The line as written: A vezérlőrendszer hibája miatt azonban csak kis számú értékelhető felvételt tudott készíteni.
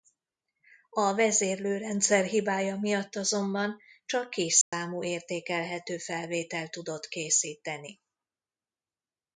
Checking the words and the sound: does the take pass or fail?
fail